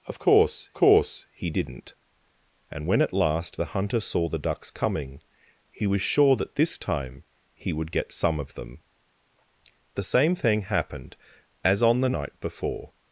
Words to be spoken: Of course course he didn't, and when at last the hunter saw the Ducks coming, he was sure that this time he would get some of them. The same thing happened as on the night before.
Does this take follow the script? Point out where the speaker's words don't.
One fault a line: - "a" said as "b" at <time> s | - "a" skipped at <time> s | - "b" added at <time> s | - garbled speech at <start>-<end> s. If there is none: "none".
none